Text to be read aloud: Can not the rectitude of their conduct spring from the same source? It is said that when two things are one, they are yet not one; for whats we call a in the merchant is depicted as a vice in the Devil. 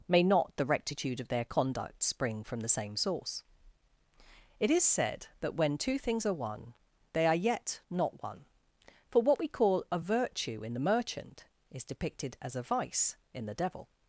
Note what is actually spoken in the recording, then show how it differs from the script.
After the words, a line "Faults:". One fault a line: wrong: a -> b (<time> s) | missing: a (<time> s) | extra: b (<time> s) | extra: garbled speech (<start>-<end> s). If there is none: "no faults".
May not the rectitude of their conduct spring from the same source? It is said that when two things are one, they are yet not one; for what we call a virtue in the merchant is depicted as a vice in the Devil.
Faults:
wrong: Can -> May (0.1 s)
wrong: whats -> what (9.2 s)
extra: virtue (10.0 s)